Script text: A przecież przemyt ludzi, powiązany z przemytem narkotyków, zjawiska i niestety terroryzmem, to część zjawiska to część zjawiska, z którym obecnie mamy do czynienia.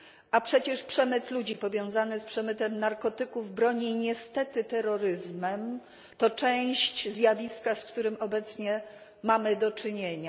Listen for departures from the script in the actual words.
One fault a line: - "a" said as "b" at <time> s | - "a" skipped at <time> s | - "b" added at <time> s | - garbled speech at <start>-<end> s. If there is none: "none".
- "zjawiska" said as "broni" at 3.5 s
- "to część zjawiska" skipped at 7.8 s